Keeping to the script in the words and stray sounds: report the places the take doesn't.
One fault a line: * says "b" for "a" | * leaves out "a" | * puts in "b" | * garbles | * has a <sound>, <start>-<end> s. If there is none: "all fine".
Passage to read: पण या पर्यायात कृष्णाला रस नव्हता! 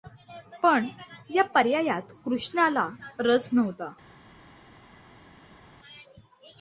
all fine